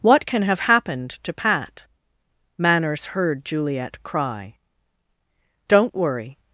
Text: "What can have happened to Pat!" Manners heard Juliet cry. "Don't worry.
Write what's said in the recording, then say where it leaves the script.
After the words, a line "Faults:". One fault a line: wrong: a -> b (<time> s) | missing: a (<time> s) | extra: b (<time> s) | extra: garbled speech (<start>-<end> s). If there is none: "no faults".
"What can have happened to Pat!" Manners heard Juliet cry. "Don't worry.
Faults:
no faults